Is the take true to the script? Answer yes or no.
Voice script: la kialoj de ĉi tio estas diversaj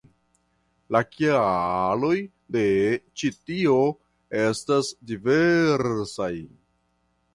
yes